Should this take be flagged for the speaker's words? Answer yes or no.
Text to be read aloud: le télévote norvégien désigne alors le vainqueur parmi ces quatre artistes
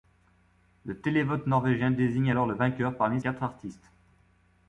yes